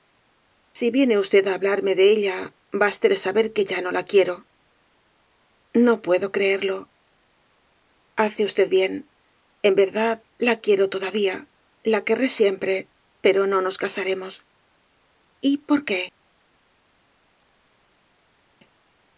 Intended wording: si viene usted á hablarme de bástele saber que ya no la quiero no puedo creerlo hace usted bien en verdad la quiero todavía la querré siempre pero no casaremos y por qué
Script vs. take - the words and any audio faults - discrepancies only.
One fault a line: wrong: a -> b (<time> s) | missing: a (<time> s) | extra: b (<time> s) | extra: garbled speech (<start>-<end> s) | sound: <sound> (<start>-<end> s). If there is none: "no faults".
extra: ella (2.1 s)
extra: nos (13.7 s)